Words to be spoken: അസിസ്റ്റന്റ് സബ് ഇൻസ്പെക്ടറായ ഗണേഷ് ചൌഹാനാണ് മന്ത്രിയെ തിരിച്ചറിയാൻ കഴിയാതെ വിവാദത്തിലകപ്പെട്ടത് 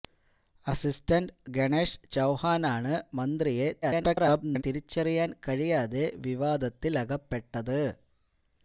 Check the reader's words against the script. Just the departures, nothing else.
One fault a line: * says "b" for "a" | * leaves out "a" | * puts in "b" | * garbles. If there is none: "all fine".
* leaves out "സബ് ഇൻസ്പെക്ടറായ"
* garbles